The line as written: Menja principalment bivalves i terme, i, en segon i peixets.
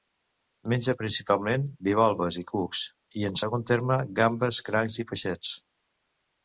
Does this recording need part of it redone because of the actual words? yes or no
yes